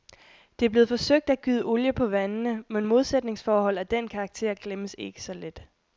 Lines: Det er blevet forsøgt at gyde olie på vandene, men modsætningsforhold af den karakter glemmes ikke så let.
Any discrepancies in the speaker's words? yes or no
no